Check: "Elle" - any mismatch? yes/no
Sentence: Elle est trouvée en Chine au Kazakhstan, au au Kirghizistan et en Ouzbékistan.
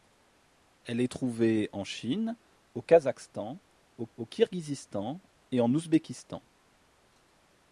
no